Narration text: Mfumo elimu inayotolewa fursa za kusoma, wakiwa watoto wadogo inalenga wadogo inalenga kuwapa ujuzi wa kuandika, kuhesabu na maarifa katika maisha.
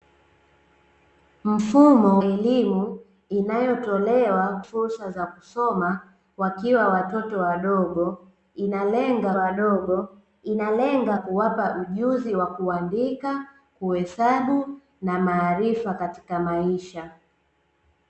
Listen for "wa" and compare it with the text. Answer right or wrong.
right